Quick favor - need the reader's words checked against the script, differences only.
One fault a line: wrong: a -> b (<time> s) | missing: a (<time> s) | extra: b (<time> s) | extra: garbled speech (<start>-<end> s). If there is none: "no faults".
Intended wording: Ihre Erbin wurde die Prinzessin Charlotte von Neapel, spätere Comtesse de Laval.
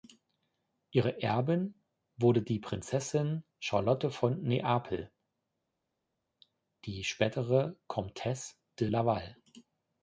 extra: die (6.8 s)